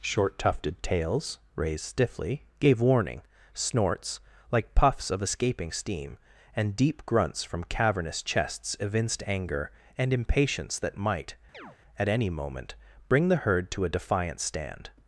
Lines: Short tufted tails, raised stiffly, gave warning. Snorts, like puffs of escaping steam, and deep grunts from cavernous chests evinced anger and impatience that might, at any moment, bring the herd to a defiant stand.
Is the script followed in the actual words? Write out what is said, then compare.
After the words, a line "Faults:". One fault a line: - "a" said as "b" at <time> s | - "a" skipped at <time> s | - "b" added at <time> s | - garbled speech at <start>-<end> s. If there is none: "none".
Short tufted tails, raised stiffly, gave warning. Snorts, like puffs of escaping steam, and deep grunts from cavernous chests evinced anger and impatience that might, at any moment, bring the herd to a defiant stand.
Faults:
none